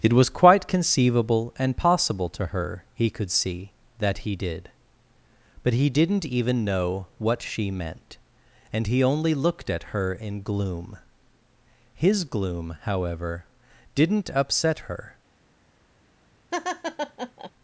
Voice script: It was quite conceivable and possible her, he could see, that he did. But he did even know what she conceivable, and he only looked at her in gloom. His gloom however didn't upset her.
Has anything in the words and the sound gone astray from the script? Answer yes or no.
yes